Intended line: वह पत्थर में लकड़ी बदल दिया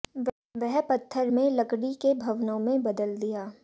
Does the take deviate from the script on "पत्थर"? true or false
false